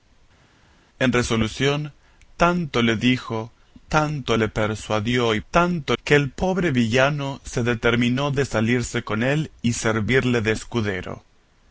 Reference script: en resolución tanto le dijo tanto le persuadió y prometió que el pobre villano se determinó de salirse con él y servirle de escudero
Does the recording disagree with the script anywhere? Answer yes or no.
yes